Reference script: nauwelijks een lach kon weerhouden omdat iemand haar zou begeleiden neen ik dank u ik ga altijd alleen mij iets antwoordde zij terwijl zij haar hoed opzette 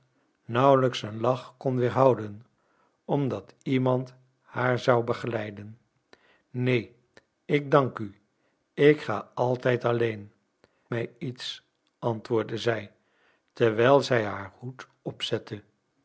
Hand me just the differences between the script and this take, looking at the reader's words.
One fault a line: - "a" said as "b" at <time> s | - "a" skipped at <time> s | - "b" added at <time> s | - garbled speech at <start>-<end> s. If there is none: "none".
none